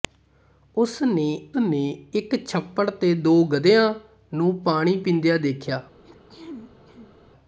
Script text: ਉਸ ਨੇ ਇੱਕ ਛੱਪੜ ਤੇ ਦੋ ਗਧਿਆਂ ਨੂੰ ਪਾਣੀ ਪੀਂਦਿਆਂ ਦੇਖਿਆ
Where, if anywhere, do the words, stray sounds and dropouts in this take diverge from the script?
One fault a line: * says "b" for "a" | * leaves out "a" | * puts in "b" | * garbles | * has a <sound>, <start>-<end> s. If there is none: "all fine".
* puts in "ਨੇ"
* has a throat clearing, 6.0-7.2 s